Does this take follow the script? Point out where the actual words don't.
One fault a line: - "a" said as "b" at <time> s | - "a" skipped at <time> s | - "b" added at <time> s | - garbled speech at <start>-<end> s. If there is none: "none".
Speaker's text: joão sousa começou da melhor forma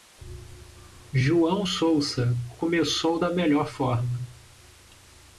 none